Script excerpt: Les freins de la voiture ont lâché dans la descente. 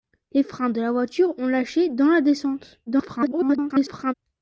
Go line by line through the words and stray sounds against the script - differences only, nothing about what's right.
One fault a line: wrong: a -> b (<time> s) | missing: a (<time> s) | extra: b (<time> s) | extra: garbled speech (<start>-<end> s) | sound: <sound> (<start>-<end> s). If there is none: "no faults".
extra: garbled speech (2.9-4.1 s)